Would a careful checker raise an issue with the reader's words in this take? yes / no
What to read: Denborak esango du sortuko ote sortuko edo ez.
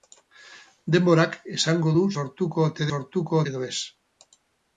no